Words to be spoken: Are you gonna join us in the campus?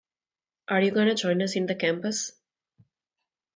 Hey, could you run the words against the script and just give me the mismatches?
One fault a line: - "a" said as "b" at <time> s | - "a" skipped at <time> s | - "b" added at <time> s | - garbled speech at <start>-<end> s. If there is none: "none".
none